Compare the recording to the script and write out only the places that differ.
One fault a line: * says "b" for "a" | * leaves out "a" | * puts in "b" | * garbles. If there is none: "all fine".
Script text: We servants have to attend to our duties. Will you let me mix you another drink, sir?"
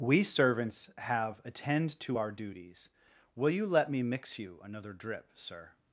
* leaves out "to"
* says "drip" for "drink"